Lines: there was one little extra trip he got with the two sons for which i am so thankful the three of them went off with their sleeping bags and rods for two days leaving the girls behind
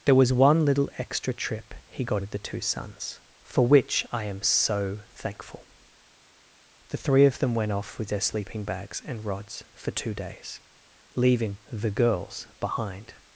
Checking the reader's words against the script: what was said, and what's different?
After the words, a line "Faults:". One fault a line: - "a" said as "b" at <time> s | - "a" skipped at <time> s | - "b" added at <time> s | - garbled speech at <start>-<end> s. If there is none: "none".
there was one little extra trip he got with the two sons for which i am so thankful the three of them went off with their sleeping bags and rods for two days leaving the girls behind
Faults:
none